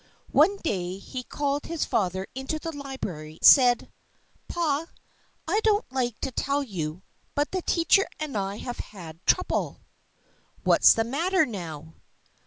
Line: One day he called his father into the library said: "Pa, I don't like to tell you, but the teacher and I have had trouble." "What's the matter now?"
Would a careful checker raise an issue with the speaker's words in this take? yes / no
no